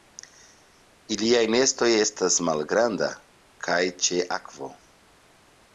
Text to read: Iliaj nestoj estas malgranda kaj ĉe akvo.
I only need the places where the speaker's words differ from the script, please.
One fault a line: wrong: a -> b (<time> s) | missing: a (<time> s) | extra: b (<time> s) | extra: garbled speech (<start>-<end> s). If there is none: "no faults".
no faults